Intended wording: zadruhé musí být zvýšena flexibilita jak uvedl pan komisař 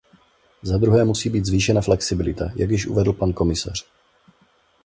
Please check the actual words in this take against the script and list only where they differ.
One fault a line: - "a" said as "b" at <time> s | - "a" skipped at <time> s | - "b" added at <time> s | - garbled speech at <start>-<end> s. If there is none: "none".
- "již" added at 2.7 s